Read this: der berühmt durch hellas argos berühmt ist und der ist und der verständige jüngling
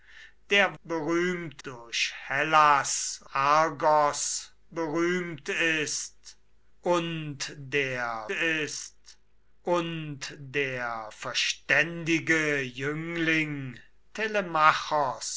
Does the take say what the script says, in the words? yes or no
yes